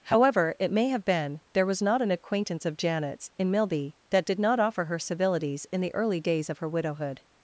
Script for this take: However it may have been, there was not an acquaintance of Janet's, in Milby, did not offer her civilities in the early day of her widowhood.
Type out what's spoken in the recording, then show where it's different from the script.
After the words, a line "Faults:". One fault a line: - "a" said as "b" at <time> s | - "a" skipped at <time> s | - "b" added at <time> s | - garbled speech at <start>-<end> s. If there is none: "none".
However it may have been, there was not an acquaintance of Janet's, in Milby, that did not offer her civilities in the early days of her widowhood.
Faults:
- "that" added at 4.1 s
- "day" said as "days" at 6.2 s